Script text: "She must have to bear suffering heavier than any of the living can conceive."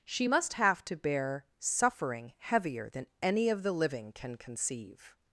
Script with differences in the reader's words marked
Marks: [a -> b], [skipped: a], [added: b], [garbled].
"She must have to bear suffering heavier than any of the living can conceive."